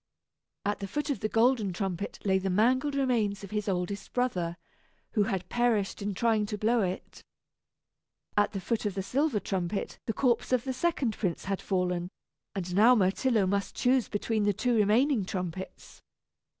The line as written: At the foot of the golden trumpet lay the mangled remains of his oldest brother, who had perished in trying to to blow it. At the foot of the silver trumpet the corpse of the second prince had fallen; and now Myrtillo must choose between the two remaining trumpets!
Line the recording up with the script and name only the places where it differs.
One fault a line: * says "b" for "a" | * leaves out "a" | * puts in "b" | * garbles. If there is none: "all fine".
* leaves out "to"